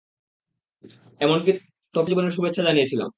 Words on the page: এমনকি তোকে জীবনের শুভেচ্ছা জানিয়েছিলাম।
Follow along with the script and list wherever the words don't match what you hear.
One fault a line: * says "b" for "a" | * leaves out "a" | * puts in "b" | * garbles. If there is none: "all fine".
all fine